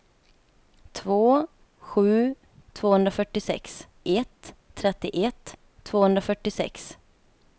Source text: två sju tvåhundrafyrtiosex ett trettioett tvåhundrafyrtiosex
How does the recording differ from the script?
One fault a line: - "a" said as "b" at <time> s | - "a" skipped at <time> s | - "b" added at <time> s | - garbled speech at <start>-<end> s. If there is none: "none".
none